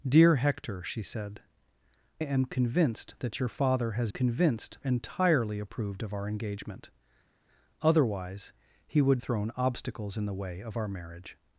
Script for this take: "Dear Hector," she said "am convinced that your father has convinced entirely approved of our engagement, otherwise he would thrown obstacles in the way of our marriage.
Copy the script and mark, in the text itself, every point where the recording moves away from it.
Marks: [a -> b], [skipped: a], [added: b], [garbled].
"Dear Hector," she said "am convinced that your father has convinced entirely approved of our engagement, otherwise he would thrown obstacles in the way of our marriage.